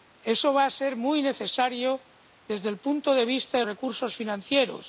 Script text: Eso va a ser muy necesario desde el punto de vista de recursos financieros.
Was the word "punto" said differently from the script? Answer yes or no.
no